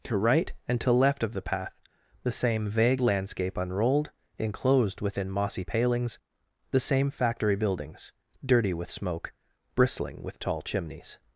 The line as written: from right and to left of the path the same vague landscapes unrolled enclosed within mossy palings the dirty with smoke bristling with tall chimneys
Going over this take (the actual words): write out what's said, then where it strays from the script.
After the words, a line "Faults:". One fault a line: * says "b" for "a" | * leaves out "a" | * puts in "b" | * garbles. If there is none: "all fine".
to right and to left of the path the same vague landscape unrolled enclosed within mossy palings the same factory buildings dirty with smoke bristling with tall chimneys
Faults:
* says "to" for "from"
* says "landscape" for "landscapes"
* puts in "same factory buildings"